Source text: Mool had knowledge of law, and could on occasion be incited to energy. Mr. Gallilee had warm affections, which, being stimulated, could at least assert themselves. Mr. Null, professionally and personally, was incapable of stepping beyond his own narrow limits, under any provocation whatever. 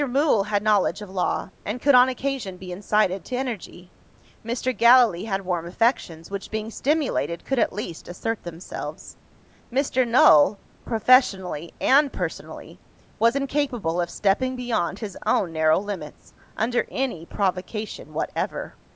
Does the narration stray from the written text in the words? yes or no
no